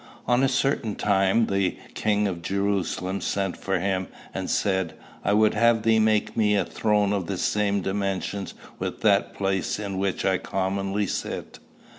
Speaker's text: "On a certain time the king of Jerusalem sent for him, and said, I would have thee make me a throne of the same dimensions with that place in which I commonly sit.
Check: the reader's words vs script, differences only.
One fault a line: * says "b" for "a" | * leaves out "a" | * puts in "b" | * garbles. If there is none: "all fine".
all fine